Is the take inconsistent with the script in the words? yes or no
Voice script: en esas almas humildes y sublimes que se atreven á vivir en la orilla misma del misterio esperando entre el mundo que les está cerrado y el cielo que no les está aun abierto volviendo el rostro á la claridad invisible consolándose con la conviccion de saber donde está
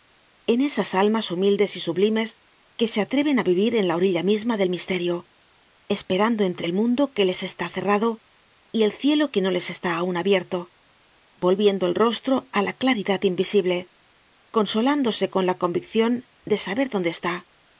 no